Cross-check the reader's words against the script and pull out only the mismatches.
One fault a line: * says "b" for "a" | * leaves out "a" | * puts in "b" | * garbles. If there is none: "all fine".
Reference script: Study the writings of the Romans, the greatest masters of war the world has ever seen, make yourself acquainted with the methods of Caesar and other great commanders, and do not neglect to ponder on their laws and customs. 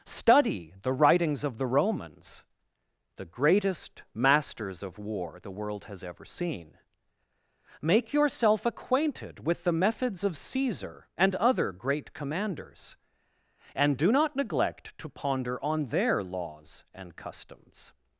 all fine